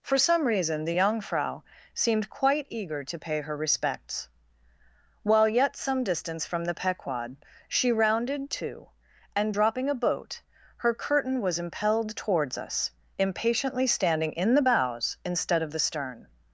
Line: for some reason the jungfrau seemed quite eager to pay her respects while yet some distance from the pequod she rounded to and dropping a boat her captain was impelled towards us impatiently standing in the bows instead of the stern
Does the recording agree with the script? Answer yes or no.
no